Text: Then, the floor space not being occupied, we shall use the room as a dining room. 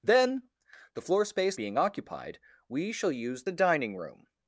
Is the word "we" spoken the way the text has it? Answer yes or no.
yes